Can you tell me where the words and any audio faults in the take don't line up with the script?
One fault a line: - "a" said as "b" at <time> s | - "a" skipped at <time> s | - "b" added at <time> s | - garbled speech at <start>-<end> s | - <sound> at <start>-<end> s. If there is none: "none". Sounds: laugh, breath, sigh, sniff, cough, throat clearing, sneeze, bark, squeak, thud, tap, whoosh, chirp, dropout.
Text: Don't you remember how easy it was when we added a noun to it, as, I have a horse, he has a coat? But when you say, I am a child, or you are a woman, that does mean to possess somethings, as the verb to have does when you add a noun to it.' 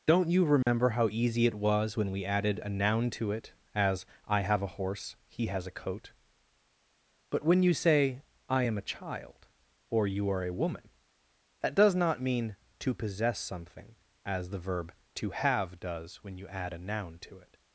- dropout at 0.6-0.7 s
- "not" added at 12.0 s
- "somethings" said as "something" at 13.4 s